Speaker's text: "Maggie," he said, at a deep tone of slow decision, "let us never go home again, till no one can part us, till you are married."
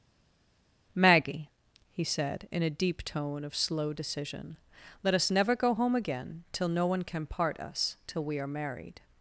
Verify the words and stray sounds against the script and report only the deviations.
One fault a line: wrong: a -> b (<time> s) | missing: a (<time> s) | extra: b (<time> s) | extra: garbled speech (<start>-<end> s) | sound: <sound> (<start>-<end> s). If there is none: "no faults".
wrong: at -> in (2.5 s)
wrong: you -> we (8.2 s)